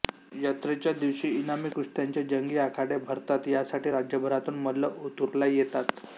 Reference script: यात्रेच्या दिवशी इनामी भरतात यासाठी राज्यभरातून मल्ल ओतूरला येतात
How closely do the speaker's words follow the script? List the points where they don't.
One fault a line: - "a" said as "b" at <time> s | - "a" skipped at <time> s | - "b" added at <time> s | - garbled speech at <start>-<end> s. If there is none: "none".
- "कुस्त्यांचे जंगी आखाडे" added at 1.7 s